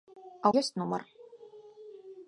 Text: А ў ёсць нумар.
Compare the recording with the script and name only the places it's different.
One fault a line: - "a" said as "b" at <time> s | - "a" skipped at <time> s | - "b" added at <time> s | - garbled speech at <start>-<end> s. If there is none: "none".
none